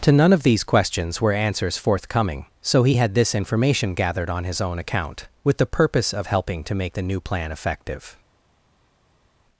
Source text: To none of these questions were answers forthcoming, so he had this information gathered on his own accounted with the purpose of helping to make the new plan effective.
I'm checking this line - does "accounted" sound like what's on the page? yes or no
no